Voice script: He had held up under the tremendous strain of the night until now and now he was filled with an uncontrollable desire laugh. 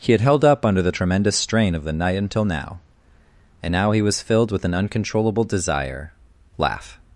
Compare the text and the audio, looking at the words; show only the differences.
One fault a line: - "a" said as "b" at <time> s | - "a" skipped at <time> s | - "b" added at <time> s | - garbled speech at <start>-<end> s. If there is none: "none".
none